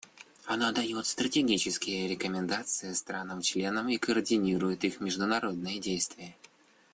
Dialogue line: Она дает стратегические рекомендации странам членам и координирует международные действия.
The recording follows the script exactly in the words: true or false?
false